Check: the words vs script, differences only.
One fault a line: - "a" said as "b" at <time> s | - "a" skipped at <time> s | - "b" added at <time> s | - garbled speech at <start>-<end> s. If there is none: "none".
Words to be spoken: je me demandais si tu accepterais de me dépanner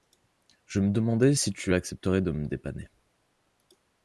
none